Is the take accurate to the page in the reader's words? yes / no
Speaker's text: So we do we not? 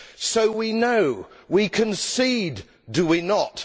no